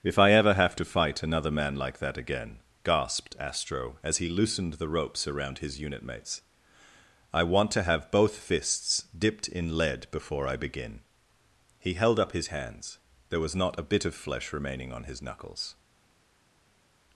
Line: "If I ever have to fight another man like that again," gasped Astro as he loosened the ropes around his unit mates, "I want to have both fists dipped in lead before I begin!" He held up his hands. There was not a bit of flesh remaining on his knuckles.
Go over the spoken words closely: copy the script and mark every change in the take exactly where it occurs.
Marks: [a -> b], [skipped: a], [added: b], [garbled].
"If I ever have to fight another man like that again," gasped Astro as he loosened the ropes around his unit mates, "I want to have both fists dipped in lead before I begin!" He held up his hands. There was not a bit of flesh remaining on his knuckles.